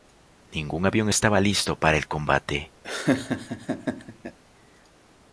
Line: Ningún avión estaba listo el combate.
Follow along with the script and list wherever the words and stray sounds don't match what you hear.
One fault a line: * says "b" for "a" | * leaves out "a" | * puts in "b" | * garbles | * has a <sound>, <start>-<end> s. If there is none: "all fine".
* puts in "para"
* has a laugh, 2.8-4.4 s